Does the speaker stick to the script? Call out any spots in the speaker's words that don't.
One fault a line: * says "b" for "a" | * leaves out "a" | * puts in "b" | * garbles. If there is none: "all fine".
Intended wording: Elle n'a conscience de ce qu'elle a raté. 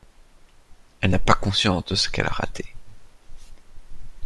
* puts in "pas"